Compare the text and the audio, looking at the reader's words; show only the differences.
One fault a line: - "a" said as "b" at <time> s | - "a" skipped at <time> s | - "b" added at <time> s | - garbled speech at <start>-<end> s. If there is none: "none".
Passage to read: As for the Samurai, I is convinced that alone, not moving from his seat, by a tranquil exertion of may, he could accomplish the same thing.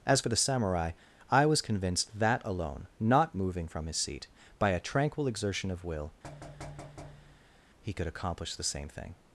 - "is" said as "was" at 1.5 s
- "may" said as "will" at 5.8 s